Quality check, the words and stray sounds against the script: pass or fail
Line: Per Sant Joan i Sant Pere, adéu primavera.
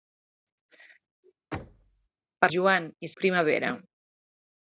fail